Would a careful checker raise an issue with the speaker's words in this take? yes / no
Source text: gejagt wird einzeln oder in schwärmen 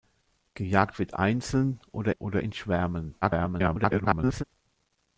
yes